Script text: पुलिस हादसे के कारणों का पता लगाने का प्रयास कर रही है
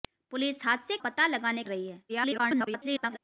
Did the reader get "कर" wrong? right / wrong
wrong